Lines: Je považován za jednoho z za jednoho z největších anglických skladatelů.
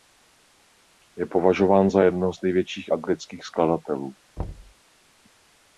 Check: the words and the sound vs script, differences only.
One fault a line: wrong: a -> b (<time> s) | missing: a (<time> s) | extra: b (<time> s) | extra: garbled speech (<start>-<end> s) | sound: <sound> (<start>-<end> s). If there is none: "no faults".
missing: za jednoho z (2.4 s)
sound: thud (4.4-4.7 s)